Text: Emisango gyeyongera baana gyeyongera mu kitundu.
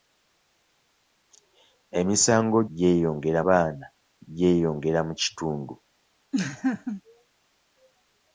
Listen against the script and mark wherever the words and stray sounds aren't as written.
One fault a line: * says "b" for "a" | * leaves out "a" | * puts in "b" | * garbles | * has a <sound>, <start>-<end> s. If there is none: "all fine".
* has a laugh, 6.3-7.0 s